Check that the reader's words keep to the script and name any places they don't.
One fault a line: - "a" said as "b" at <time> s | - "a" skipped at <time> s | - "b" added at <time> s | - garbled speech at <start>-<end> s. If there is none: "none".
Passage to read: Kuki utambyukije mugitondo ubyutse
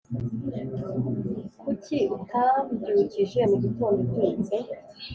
none